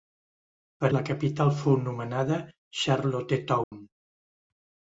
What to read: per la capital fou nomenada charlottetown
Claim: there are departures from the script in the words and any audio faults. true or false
true